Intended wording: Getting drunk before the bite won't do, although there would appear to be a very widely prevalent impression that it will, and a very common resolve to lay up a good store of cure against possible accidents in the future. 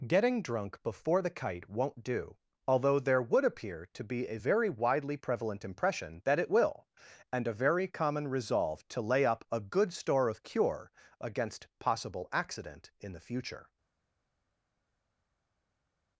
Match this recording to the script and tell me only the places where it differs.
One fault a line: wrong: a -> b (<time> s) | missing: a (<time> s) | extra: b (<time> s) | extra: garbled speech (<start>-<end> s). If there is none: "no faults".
wrong: bite -> kite (1.3 s)
wrong: accidents -> accident (12.3 s)